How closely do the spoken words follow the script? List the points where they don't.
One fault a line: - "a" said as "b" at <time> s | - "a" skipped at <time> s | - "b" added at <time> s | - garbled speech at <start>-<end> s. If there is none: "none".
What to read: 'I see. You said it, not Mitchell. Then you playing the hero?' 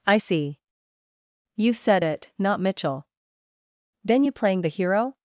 none